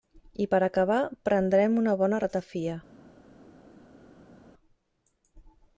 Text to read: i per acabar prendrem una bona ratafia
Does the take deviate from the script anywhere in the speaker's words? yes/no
no